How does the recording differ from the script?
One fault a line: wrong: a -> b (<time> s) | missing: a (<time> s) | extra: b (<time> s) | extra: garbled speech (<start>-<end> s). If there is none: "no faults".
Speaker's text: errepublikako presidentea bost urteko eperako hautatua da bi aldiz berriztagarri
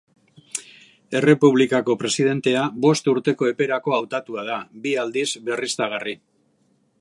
no faults